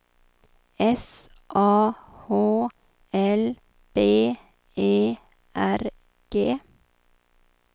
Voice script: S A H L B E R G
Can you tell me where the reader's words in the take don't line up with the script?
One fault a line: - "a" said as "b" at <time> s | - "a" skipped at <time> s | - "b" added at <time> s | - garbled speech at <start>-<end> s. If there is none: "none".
none